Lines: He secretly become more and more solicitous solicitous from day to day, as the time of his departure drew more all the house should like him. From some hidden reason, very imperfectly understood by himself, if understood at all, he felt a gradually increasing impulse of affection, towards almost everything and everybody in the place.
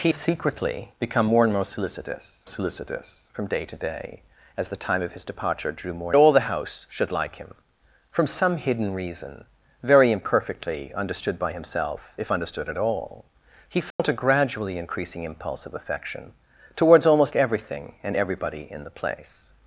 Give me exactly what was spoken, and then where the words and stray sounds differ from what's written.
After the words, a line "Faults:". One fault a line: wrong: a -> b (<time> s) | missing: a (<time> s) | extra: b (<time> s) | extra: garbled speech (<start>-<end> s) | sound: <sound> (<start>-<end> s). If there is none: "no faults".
He secretly become more and more solicitous solicitous from day to day, as the time of his departure drew more all the house should like him. From some hidden reason, very imperfectly understood by himself, if understood at all, he felt a gradually increasing impulse of affection, towards almost everything and everybody in the place.
Faults:
sound: dropout (13.9-14.0 s)